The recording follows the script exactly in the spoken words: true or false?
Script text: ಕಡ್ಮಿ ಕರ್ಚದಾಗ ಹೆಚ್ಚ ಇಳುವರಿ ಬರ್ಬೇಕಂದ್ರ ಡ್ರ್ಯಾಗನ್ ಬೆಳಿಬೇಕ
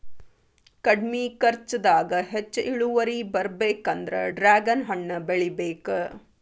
false